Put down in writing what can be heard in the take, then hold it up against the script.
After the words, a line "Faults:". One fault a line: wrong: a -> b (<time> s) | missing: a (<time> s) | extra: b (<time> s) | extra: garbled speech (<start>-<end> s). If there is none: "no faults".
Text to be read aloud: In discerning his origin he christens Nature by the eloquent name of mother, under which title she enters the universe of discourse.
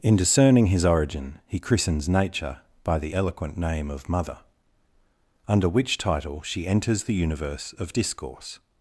In discerning his origin he christens Nature by the eloquent name of mother, under which title she enters the universe of discourse.
Faults:
no faults